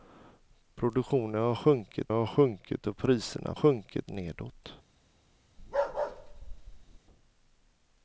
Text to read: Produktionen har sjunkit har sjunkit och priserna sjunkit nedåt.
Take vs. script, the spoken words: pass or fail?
pass